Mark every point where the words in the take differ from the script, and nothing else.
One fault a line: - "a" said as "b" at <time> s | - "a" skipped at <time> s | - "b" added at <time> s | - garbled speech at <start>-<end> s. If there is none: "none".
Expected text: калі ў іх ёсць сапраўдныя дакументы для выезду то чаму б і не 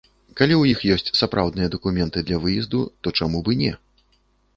none